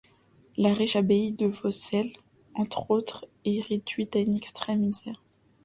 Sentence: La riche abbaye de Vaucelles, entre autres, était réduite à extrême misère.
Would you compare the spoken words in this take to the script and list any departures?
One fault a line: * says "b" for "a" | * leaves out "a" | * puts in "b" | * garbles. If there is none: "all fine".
* says "est" for "était"
* puts in "une"